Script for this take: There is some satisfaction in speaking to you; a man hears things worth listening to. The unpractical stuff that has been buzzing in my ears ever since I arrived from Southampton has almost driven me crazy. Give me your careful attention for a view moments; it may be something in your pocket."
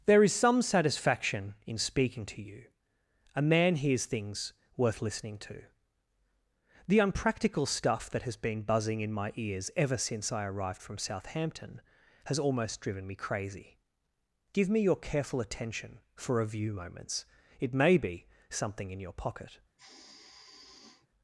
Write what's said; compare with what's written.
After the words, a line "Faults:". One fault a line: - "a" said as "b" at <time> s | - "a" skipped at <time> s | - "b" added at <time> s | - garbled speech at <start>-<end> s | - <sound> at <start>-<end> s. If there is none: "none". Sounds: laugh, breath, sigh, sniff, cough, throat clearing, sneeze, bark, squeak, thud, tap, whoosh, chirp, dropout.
There is some satisfaction in speaking to you; a man hears things worth listening to. The unpractical stuff that has been buzzing in my ears ever since I arrived from Southampton has almost driven me crazy. Give me your careful attention for a view moments; it may be something in your pocket."
Faults:
- sigh at 19.8-21.1 s